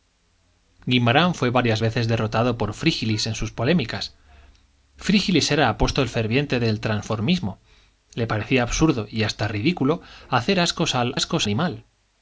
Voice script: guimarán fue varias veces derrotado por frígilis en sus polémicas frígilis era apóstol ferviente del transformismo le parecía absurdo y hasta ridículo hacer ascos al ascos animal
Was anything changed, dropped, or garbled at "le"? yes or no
no